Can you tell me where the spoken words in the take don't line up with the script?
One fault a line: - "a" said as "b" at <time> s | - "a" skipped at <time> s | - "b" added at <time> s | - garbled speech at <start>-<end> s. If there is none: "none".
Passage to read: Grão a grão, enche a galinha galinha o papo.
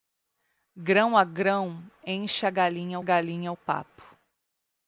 none